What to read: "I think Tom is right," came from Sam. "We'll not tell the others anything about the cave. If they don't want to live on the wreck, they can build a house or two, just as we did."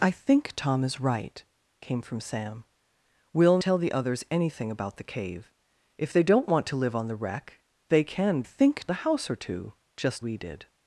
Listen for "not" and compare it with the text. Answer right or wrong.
wrong